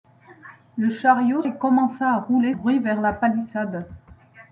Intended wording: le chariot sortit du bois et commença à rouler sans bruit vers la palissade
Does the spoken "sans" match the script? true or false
false